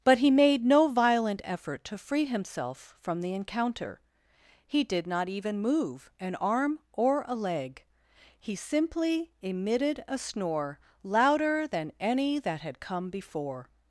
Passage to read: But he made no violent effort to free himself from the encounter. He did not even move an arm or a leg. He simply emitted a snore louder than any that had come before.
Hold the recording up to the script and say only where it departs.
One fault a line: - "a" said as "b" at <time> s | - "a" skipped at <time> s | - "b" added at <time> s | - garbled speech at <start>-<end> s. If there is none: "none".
none